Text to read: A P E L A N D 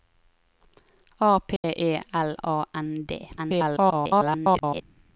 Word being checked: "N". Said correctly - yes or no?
yes